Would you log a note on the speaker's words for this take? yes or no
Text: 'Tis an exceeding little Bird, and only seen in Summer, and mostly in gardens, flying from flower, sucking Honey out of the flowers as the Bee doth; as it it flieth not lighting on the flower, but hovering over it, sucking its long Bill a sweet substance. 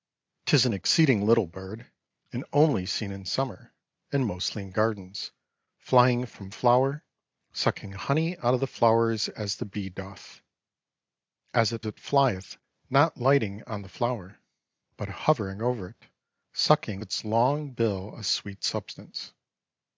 no